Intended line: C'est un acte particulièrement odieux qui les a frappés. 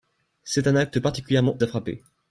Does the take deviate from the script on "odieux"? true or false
true